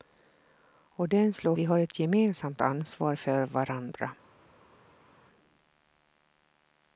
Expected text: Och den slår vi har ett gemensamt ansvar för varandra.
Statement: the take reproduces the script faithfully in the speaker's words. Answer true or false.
true